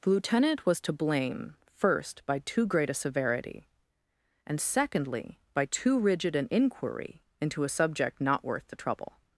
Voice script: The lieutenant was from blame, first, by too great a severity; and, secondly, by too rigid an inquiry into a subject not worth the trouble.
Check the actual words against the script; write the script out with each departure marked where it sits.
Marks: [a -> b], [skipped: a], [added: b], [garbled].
The lieutenant was [from -> to] blame, first, by too great a severity; and, secondly, by too rigid an inquiry into a subject not worth the trouble.